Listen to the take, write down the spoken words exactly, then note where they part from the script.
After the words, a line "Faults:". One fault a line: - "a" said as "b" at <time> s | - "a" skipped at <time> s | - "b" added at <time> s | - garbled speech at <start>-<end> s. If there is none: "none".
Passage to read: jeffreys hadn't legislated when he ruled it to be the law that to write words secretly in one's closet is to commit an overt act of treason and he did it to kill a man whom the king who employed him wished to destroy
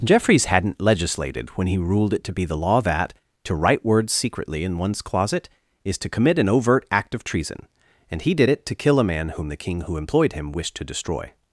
jeffreys hadn't legislated when he ruled it to be the law that to write words secretly in one's closet is to commit an overt act of treason and he did it to kill a man whom the king who employed him wished to destroy
Faults:
none